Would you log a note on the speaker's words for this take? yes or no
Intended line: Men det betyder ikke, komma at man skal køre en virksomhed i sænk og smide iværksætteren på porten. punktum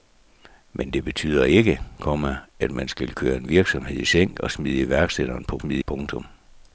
yes